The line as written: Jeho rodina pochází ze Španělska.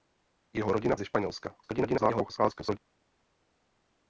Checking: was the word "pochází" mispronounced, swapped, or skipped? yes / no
yes